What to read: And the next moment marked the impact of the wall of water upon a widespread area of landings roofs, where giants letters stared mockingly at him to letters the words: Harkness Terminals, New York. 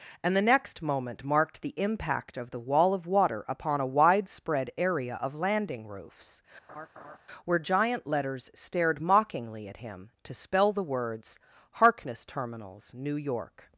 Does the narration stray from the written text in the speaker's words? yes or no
yes